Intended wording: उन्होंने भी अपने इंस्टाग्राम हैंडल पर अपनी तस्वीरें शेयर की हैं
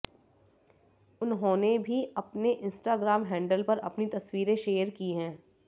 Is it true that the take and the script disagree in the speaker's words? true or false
false